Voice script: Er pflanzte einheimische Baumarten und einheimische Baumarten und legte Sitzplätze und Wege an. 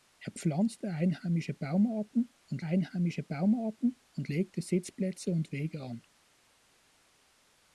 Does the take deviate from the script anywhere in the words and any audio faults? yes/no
no